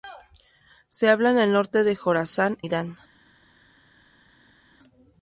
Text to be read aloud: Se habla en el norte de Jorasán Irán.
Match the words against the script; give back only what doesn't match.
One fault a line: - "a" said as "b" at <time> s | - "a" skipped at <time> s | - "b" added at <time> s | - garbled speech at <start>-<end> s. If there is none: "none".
none